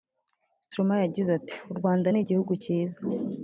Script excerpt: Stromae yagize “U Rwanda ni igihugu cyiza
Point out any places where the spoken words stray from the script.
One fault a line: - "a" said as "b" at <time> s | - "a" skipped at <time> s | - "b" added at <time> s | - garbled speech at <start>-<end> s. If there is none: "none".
- "ati" added at 1.4 s